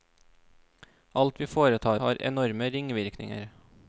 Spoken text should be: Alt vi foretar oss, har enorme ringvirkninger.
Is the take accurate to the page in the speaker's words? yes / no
no